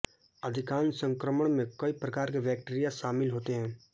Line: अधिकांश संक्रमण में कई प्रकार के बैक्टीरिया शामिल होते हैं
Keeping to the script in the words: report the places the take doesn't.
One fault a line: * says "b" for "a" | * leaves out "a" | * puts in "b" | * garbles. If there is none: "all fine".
all fine